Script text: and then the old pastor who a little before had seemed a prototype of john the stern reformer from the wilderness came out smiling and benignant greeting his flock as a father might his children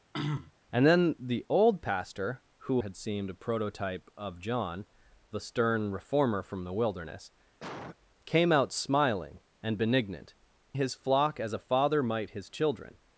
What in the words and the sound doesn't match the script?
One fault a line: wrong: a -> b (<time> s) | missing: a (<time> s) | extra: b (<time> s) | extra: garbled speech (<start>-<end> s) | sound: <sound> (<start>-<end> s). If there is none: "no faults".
sound: throat clearing (0.1-0.5 s)
missing: a little before (2.8 s)
sound: cough (7.6-8.0 s)
missing: greeting (10.3 s)